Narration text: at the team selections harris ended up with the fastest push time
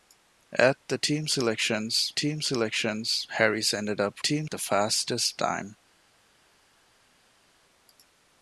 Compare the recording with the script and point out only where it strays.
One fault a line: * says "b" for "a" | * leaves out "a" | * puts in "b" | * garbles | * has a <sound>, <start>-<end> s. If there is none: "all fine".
* puts in "team selections"
* says "team" for "with"
* leaves out "push"